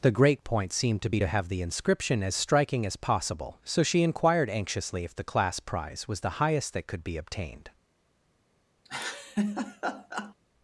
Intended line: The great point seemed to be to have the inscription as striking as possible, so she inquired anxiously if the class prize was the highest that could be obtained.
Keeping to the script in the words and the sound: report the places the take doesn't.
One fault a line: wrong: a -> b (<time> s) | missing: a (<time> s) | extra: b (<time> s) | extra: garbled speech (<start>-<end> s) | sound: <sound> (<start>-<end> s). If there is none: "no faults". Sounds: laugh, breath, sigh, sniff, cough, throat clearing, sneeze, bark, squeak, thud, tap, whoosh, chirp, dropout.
sound: laugh (8.8-10.3 s)